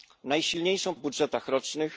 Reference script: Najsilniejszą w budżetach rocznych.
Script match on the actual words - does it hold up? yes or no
yes